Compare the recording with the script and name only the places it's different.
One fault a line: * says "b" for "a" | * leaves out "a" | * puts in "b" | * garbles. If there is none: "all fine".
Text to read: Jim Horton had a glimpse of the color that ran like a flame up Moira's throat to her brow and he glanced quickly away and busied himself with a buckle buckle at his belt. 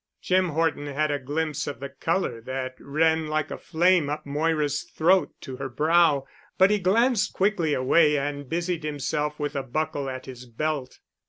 * says "but" for "and"
* leaves out "buckle"